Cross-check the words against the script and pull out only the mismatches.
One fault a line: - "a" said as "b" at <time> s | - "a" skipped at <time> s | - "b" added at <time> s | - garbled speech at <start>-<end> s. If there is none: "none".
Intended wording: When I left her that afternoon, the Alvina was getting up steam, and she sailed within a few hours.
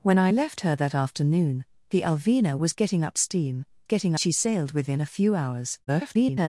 - "and" said as "getting" at 3.8 s
- garbled speech at 5.9-6.5 s